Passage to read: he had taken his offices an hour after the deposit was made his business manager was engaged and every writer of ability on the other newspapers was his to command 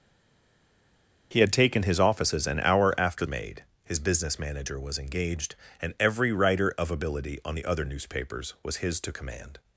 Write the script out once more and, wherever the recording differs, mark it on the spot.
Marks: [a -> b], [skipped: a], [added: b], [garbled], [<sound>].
he had taken his offices an hour after [skipped: the deposit was] made his business manager was engaged and every writer of ability on the other newspapers was his to command